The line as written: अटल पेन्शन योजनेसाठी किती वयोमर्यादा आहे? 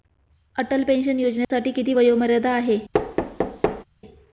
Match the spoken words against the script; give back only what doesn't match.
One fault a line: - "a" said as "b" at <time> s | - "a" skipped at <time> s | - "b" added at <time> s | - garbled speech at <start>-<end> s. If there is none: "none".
none